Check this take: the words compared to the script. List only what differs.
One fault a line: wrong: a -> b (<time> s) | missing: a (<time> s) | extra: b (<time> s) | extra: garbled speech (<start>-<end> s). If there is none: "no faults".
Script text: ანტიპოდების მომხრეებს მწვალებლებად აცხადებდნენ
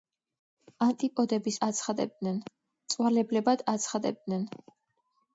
wrong: მომხრეებს -> აცხადებდნენ (1.7 s)